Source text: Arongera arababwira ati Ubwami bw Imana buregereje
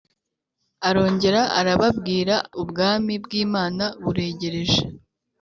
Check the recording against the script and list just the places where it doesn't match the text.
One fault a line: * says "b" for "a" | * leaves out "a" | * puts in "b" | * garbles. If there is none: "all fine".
* leaves out "ati"